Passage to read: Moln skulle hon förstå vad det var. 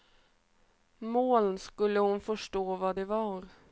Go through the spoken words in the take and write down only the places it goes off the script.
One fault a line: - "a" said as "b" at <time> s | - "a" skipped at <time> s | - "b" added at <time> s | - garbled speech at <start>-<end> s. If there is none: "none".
none